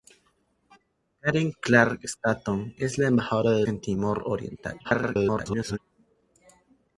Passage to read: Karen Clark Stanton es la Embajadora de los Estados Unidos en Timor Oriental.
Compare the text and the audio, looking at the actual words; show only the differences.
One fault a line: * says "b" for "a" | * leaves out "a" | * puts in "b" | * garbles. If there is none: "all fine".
* leaves out "los Estados Unidos"
* garbles